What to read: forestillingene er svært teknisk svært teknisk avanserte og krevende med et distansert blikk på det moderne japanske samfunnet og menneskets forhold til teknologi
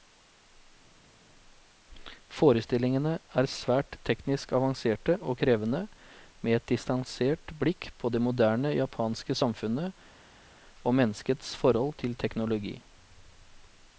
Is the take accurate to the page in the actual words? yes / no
no